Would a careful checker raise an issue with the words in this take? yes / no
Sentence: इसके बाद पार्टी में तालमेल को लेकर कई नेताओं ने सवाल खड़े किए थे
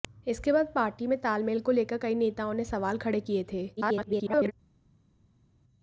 yes